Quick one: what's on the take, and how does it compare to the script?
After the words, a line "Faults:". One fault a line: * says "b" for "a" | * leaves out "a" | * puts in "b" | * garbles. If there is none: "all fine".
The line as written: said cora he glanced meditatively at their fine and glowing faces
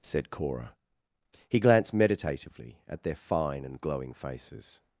said cora he glanced meditatively at their fine and glowing faces
Faults:
all fine